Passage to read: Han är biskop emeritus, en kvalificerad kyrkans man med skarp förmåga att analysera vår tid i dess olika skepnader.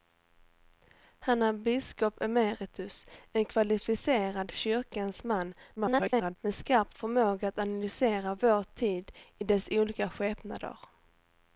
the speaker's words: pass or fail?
fail